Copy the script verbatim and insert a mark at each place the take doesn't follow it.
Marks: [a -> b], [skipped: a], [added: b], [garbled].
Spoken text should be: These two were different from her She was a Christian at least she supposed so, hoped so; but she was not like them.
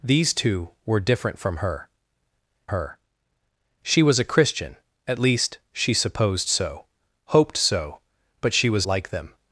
These two were different from her [added: her] She was a Christian at least she supposed so, hoped so; but she was [skipped: not] like them.